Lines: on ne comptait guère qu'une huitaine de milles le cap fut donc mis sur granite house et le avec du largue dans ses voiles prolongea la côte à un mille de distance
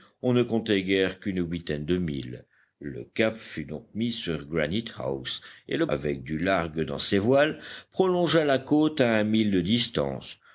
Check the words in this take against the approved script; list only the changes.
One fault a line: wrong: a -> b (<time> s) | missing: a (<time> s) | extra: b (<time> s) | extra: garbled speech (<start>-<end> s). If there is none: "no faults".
no faults